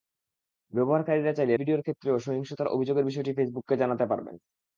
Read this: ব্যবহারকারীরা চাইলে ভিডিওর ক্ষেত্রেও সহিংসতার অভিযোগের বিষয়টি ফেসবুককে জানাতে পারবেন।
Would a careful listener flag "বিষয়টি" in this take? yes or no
no